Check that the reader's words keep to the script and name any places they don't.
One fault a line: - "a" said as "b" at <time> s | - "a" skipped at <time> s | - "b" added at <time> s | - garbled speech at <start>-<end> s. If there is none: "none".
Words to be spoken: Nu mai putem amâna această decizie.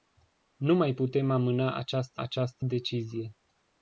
- "această" added at 2.2 s